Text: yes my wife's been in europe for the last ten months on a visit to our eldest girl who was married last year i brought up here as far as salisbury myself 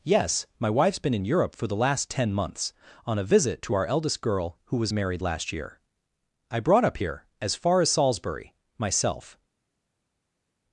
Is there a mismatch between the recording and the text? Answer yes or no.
no